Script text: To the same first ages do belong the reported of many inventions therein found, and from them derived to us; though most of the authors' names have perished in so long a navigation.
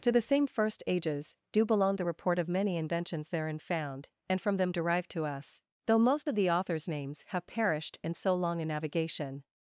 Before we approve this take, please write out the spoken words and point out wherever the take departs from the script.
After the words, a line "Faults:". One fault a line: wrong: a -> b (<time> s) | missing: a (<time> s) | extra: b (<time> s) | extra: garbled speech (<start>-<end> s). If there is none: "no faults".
To the same first ages do belong the report of many inventions therein found, and from them derived to us; though most of the authors' names have perished in so long a navigation.
Faults:
wrong: reported -> report (2.0 s)